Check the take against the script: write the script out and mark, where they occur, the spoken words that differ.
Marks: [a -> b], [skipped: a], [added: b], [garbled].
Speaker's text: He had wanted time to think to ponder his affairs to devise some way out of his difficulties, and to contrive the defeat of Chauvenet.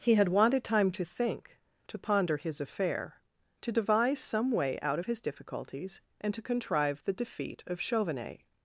He had wanted time to think to ponder his [affairs -> affair] to devise some way out of his difficulties, and to contrive the defeat of Chauvenet.